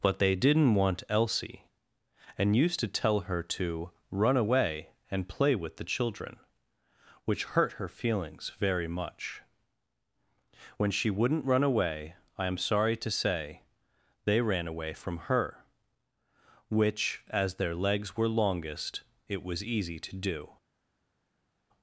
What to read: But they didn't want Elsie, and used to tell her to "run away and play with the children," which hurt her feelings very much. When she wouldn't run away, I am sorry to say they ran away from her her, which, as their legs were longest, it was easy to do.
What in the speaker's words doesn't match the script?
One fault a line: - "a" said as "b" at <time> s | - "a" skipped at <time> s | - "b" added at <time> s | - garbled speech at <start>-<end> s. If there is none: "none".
- "her" skipped at 15.7 s